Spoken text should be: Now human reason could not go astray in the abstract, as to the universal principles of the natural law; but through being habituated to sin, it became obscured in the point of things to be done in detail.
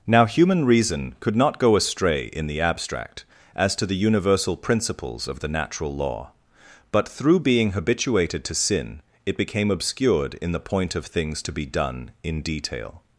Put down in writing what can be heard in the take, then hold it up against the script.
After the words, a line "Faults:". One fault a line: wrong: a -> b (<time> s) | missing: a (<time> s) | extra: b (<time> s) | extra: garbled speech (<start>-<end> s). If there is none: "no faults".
Now human reason could not go astray in the abstract, as to the universal principles of the natural law; but through being habituated to sin, it became obscured in the point of things to be done in detail.
Faults:
no faults